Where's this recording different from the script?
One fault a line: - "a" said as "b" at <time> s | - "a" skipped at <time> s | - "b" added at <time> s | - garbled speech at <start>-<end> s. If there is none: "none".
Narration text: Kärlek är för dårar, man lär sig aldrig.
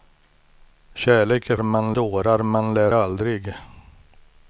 - "för" said as "man" at 1.6 s
- "sig" skipped at 2.9 s